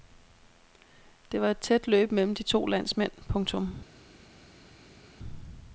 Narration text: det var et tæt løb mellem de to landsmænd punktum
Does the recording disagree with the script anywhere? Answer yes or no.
no